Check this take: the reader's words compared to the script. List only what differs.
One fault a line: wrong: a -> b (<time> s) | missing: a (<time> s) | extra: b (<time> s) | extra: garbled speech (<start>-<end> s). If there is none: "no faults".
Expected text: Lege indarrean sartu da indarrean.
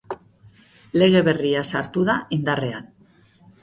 wrong: indarrean -> berria (1.3 s)